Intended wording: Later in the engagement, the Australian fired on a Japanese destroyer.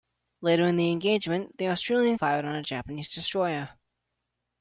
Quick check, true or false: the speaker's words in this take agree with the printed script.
true